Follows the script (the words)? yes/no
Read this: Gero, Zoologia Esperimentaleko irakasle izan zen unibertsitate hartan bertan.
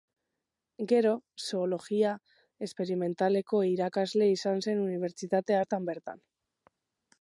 yes